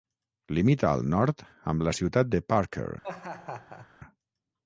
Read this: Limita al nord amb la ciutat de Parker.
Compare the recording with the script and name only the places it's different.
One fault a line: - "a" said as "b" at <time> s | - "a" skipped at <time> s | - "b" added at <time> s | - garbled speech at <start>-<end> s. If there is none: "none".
none